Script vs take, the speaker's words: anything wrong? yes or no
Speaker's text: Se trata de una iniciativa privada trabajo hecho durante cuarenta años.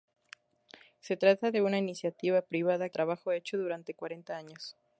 no